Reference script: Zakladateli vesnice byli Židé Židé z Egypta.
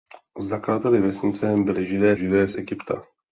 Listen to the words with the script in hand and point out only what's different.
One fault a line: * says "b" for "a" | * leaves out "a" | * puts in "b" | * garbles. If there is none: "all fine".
all fine